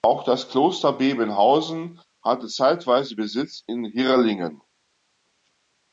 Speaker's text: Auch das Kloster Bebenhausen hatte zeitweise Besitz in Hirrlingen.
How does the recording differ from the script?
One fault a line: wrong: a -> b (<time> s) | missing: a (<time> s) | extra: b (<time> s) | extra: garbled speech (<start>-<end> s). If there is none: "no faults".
no faults